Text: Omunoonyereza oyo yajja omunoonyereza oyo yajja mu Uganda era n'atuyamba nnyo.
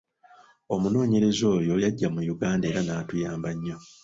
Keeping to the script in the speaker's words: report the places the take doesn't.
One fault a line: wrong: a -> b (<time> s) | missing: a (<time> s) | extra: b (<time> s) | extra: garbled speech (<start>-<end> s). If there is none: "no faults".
missing: omunoonyereza oyo yajja (2.1 s)